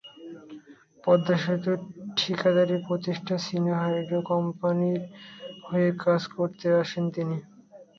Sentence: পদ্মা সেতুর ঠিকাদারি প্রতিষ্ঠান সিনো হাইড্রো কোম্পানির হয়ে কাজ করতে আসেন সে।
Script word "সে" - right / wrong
wrong